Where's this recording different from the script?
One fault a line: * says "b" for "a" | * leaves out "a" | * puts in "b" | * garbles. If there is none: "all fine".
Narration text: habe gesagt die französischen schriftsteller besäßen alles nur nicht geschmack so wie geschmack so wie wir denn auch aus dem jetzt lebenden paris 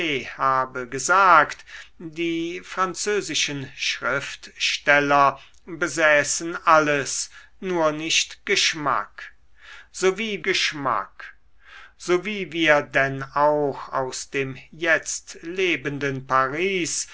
all fine